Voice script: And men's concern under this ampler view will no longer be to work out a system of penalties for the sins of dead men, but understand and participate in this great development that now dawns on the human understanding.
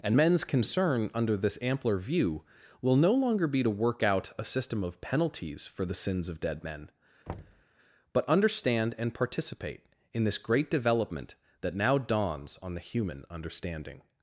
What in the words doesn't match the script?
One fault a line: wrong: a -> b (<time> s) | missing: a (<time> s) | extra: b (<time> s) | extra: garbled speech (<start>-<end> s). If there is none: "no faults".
no faults